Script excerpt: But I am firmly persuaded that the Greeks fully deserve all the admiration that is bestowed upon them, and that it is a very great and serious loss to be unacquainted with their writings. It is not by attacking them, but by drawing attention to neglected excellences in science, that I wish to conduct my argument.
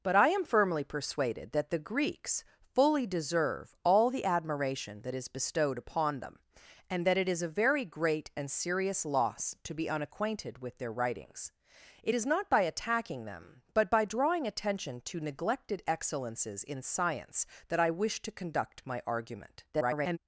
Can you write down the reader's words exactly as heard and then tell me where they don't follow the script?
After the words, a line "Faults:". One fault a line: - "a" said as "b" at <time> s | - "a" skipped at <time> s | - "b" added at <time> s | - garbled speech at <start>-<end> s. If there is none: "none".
But I am firmly persuaded that the Greeks fully deserve all the admiration that is bestowed upon them, and that it is a very great and serious loss to be unacquainted with their writings. It is not by attacking them, but by drawing attention to neglected excellences in science, that I wish to conduct my argument. [garbled]
Faults:
- garbled speech at 19.7-20.2 s